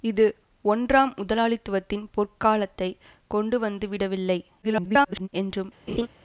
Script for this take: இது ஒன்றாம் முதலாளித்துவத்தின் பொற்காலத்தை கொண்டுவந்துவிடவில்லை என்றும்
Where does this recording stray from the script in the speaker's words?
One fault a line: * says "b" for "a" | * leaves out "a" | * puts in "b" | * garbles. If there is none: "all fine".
* garbles